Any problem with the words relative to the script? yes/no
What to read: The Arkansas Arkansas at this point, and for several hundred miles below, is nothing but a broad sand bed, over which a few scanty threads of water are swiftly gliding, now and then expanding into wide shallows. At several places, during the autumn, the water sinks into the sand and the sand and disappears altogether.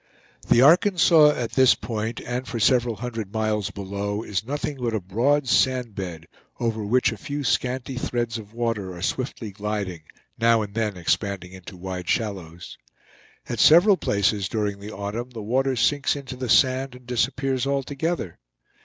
yes